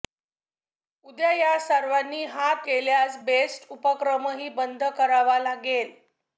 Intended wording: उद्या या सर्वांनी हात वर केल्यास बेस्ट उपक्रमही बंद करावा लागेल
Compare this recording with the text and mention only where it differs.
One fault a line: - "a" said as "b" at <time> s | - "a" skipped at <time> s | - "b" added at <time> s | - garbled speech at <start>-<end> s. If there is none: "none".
- "वर" skipped at 2.7 s